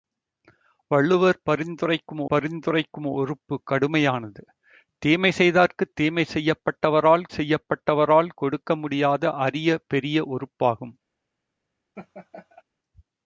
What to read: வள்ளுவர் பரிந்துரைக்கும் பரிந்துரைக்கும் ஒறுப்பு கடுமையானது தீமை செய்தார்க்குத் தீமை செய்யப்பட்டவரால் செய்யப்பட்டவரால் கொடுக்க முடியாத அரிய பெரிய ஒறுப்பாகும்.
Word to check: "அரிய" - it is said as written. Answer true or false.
true